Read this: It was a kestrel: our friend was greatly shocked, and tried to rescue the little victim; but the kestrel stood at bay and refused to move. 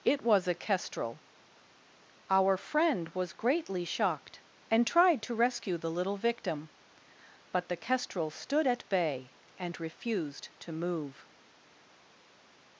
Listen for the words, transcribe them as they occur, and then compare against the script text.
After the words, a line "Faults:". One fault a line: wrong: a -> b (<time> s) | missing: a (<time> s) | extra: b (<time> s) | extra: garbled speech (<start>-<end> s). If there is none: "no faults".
It was a kestrel: our friend was greatly shocked, and tried to rescue the little victim; but the kestrel stood at bay and refused to move.
Faults:
no faults